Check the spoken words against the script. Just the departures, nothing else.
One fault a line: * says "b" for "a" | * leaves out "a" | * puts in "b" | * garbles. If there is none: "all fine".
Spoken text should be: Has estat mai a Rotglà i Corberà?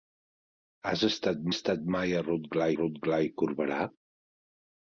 * puts in "estat"
* puts in "Rotglà"